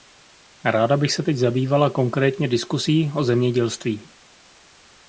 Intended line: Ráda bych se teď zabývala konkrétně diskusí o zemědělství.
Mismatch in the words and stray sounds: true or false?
false